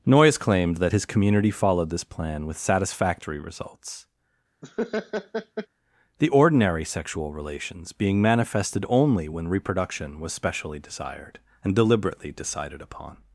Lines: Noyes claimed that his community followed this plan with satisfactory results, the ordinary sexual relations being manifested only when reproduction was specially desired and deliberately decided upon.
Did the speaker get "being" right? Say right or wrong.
right